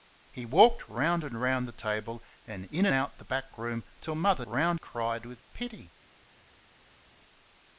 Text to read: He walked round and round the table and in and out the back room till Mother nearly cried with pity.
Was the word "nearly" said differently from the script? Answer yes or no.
yes